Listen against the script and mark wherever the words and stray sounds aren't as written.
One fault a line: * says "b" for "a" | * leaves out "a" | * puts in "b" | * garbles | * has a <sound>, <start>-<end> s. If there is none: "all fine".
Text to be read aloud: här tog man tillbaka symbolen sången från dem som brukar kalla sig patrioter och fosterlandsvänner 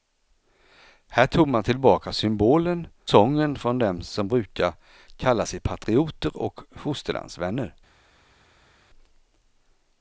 all fine